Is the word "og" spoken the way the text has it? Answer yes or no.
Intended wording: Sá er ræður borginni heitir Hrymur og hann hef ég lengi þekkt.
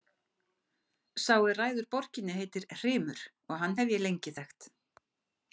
yes